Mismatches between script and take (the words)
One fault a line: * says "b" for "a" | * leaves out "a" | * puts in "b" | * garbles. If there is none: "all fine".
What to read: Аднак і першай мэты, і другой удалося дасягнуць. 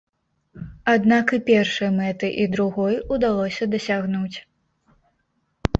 all fine